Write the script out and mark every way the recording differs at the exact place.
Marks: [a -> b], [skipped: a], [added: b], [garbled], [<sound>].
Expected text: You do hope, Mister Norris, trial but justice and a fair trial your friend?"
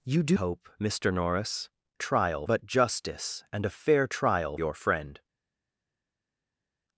You do hope, Mister Norris, trial but justice and a fair trial your friend?"